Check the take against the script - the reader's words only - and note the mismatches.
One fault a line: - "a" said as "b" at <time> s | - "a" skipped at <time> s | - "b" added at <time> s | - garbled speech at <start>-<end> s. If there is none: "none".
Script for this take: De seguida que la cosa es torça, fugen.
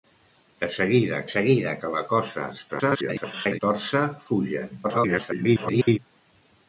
- "seguida" added at 1.3 s
- garbled speech at 2.7-3.6 s
- garbled speech at 4.8-6.0 s